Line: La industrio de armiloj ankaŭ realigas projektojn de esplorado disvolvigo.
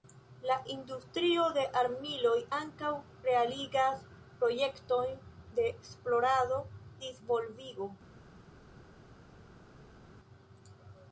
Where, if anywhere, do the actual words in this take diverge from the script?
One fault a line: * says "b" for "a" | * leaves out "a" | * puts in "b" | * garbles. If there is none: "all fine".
all fine